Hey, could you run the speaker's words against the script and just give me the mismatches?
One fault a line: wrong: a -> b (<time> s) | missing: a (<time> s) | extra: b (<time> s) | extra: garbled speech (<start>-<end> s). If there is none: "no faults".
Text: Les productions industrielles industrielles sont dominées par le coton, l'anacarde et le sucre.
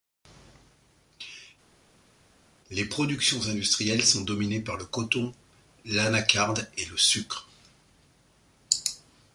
missing: industrielles (4.0 s)